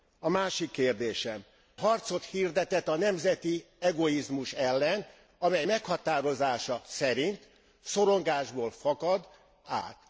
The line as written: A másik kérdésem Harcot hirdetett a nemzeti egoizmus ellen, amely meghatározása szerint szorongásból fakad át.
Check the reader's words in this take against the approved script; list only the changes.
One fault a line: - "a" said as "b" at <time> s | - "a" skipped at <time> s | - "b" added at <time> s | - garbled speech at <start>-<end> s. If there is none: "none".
none